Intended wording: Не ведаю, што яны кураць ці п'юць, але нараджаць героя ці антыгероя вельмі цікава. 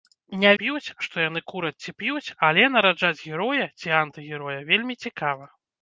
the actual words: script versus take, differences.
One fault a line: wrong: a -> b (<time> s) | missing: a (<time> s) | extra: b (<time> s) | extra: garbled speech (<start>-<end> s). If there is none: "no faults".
wrong: ведаю -> п'юць (0.6 s)